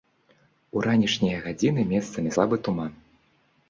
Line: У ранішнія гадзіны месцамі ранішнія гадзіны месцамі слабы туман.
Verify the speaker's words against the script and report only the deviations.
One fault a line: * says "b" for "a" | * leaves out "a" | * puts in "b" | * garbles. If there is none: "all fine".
* leaves out "ранішнія гадзіны месцамі"